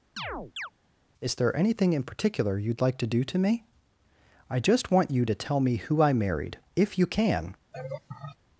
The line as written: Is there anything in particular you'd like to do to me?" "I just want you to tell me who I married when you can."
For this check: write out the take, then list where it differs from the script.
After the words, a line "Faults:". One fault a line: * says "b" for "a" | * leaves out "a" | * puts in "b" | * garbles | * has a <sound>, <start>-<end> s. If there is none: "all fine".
Is there anything in particular you'd like to do to me?" "I just want you to tell me who I married if you can."
Faults:
* has a chirp, 0.2-0.7 s
* says "if" for "when"
* has a laugh, 7.7-8.4 s